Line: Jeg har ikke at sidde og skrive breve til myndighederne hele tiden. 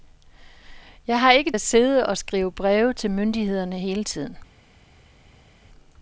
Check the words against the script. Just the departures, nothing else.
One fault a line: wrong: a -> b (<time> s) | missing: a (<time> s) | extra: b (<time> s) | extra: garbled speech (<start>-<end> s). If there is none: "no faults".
no faults